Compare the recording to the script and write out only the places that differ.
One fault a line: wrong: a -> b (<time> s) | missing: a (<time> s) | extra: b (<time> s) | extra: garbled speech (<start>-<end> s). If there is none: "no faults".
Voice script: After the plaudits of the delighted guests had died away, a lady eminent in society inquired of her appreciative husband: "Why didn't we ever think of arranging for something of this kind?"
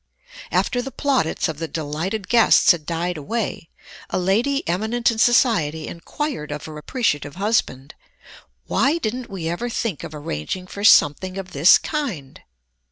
no faults